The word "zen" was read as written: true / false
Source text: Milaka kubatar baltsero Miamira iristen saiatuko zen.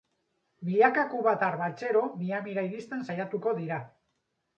false